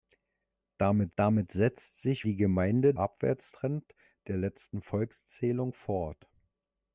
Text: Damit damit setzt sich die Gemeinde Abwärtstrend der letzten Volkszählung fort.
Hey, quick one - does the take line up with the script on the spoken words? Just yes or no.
yes